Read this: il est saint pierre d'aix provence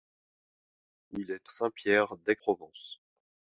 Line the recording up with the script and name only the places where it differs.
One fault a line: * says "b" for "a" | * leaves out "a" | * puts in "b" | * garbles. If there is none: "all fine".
all fine